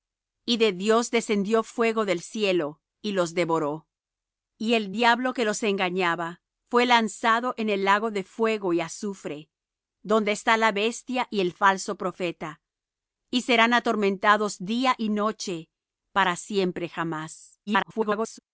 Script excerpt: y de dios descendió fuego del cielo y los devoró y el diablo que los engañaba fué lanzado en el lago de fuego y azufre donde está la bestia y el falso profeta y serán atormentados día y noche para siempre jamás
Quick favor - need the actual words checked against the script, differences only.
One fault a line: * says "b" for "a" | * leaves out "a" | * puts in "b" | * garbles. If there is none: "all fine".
* garbles